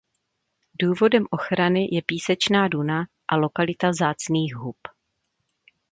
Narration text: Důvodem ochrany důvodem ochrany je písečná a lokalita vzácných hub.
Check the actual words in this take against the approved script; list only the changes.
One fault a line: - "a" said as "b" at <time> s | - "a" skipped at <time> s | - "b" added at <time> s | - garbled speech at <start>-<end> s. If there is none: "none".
- "důvodem ochrany" skipped at 1.9 s
- "duna" added at 2.7 s